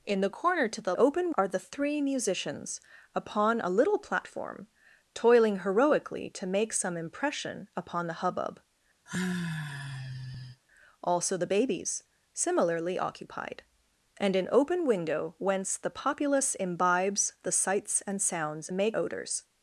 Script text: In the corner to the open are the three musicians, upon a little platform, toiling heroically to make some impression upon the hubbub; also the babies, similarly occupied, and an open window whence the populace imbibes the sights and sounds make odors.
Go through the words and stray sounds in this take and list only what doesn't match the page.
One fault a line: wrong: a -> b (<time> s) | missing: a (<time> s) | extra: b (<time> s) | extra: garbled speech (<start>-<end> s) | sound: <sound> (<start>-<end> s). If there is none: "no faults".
sound: sigh (9.1-10.6 s)